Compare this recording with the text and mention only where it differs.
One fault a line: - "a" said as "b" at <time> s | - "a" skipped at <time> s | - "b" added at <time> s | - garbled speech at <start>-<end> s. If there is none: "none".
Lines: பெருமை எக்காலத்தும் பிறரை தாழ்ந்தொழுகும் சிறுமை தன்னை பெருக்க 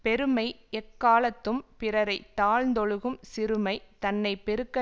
none